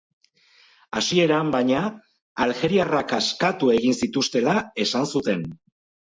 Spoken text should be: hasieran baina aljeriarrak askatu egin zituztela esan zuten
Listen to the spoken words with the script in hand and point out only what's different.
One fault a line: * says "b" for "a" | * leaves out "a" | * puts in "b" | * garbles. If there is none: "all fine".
all fine